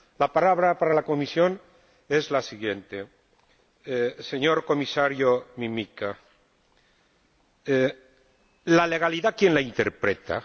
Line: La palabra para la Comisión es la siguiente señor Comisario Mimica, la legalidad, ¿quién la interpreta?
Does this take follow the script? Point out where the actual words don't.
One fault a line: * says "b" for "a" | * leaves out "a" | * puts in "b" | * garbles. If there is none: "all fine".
all fine